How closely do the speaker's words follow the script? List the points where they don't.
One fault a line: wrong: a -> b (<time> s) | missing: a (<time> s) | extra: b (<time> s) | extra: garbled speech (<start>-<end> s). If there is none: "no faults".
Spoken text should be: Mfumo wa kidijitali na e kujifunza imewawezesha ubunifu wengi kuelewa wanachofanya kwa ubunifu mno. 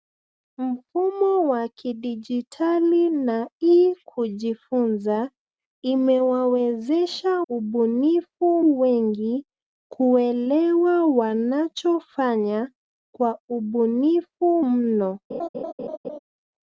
no faults